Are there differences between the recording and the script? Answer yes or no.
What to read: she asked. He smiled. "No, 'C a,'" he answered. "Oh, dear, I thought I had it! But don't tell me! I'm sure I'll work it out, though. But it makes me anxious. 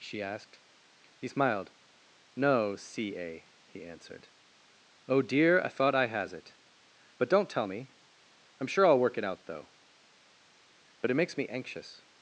yes